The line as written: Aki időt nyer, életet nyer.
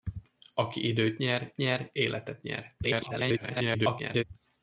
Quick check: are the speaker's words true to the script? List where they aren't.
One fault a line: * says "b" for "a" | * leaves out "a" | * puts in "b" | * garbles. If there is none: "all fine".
* puts in "nyer"
* garbles